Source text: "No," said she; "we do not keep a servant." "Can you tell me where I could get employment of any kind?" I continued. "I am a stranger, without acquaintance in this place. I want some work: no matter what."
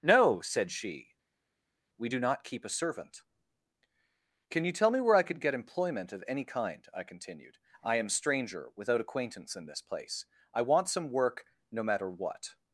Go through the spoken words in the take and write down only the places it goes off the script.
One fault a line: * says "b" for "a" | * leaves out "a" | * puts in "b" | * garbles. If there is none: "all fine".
* leaves out "a"